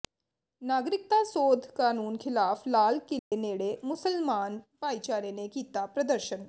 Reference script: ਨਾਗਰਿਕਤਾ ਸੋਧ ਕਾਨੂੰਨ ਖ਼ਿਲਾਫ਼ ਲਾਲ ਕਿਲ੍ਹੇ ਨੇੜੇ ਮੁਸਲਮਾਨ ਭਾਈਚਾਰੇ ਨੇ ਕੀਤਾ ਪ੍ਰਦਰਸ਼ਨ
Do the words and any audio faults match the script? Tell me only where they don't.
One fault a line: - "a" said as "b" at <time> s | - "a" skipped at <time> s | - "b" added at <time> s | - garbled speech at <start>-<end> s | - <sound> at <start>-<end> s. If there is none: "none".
- dropout at 3.2-3.3 s